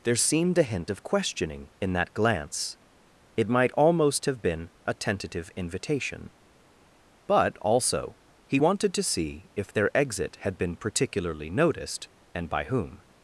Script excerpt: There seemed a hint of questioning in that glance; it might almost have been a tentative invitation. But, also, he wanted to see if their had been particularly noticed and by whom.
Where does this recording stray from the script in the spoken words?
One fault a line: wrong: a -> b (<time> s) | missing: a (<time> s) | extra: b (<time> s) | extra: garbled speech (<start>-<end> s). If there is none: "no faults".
extra: exit (9.9 s)